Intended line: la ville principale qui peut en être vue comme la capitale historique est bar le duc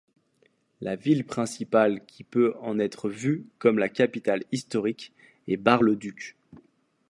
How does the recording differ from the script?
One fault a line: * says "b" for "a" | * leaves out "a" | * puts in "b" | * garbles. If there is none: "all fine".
all fine